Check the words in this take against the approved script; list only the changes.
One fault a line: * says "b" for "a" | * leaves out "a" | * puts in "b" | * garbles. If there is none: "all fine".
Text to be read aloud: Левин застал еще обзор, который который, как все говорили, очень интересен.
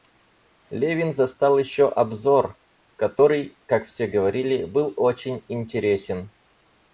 * leaves out "который"
* puts in "был"